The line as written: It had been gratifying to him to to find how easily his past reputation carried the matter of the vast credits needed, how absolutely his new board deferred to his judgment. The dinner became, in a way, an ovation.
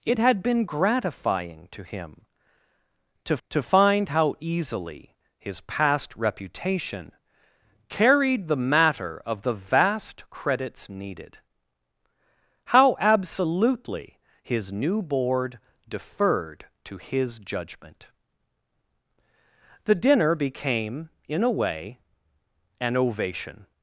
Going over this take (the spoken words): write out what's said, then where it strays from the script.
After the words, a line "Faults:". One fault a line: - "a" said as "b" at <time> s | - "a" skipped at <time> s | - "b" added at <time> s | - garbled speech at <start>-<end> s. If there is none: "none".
It had been gratifying to him to to find how easily his past reputation carried the matter of the vast credits needed, how absolutely his new board deferred to his judgment. The dinner became, in a way, an ovation.
Faults:
none